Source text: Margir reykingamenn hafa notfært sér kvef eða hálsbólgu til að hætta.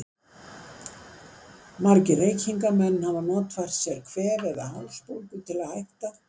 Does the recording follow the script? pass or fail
pass